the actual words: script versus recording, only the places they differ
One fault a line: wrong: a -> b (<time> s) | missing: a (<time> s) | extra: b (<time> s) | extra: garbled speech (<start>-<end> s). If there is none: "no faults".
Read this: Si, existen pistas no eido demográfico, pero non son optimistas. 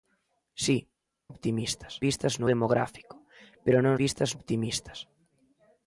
wrong: existen -> optimistas (1.3 s)
missing: eido (2.5 s)
wrong: son -> pistas (4.0 s)